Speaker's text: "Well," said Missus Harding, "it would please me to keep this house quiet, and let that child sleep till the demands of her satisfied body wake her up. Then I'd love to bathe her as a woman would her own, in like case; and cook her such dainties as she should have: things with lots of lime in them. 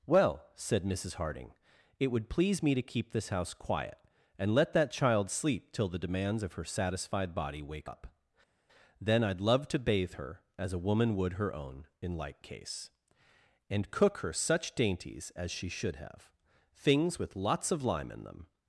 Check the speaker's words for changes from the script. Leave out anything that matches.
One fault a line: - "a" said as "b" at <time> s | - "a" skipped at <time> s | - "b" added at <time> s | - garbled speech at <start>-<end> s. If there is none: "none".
- "her" skipped at 7.9 s